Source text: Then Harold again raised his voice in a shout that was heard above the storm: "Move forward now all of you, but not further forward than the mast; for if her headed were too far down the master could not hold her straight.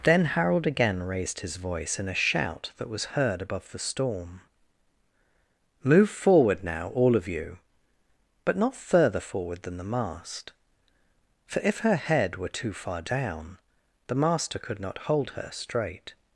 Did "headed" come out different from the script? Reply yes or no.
yes